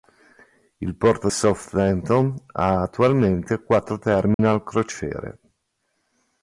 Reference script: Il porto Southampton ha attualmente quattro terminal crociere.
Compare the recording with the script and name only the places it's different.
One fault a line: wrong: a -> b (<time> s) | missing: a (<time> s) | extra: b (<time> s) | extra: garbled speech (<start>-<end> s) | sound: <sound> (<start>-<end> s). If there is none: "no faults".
sound: dropout (4.3-4.4 s)